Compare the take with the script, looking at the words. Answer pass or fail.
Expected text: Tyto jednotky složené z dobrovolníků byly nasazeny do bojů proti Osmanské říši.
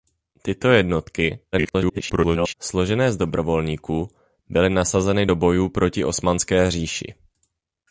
fail